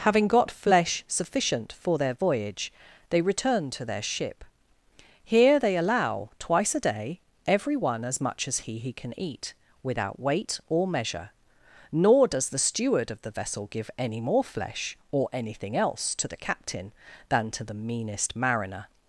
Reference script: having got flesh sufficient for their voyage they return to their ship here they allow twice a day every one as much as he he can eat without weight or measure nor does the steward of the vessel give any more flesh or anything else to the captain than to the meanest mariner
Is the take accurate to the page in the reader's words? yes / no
yes